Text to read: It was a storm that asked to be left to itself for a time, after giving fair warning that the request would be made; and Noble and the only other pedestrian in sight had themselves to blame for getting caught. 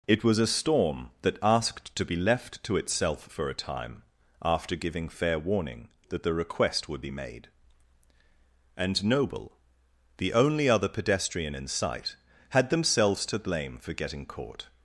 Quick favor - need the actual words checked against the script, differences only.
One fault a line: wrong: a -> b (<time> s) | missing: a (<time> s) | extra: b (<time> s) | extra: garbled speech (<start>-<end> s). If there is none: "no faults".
missing: and (9.5 s)